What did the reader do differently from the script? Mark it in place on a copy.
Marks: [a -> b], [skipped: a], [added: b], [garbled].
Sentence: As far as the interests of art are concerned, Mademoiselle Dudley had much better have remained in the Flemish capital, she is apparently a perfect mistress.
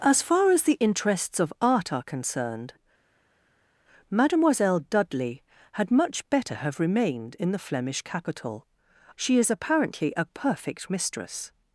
As far as the interests of art are concerned, Mademoiselle Dudley had much better have remained in the Flemish capital, she is apparently a perfect mistress.